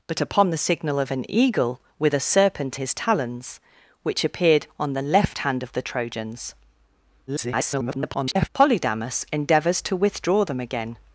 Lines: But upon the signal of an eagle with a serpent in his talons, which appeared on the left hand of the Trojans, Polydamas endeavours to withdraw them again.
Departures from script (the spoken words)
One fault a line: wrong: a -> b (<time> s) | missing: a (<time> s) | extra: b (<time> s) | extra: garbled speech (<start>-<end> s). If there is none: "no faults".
missing: in (2.8 s)
extra: garbled speech (7.3-8.5 s)